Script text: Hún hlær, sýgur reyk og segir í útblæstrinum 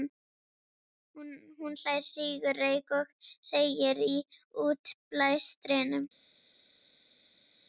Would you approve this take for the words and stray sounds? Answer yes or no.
yes